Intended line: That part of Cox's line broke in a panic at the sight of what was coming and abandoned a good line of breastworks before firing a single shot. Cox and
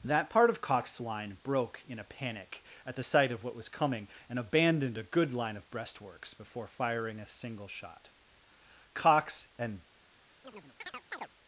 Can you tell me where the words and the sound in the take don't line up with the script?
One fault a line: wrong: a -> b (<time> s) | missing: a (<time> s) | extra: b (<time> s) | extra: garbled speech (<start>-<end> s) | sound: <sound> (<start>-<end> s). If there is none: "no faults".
sound: chirp (10.4-11.3 s)